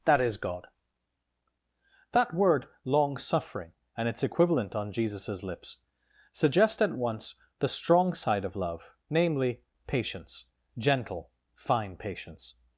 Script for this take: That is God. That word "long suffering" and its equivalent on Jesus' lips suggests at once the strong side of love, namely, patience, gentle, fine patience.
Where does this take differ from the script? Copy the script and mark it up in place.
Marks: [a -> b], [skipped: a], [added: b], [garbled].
That is God. That word "long suffering" and its equivalent on Jesus' lips [suggests -> suggest] at once the strong side of love, namely, patience, gentle, fine patience.